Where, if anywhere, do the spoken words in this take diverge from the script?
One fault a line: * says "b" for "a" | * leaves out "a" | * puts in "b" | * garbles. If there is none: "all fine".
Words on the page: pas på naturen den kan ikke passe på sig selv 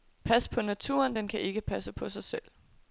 all fine